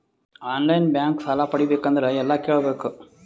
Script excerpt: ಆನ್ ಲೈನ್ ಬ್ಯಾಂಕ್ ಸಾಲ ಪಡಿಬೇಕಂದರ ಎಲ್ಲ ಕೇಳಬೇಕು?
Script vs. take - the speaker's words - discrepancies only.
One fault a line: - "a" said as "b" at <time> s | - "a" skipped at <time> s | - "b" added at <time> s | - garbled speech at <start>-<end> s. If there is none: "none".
none